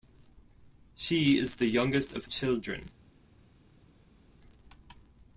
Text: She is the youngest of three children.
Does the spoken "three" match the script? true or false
false